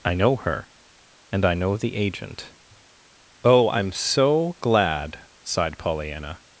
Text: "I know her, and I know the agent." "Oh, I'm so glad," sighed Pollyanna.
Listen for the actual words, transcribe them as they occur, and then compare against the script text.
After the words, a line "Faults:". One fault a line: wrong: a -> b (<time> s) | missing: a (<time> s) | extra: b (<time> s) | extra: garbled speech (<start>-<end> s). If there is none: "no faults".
"I know her, and I know the agent." "Oh, I'm so glad," sighed Pollyanna.
Faults:
no faults